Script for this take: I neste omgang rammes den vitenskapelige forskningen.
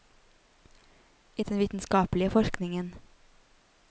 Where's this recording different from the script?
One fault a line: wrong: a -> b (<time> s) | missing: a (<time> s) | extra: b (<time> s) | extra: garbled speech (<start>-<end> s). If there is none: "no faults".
missing: neste omgang rammes (1.4 s)